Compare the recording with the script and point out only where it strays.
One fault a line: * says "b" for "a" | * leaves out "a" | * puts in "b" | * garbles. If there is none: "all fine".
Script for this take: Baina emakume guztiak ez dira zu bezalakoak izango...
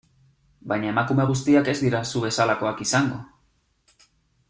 all fine